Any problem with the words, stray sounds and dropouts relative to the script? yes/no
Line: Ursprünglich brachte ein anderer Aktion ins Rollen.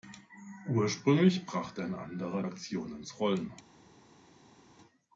no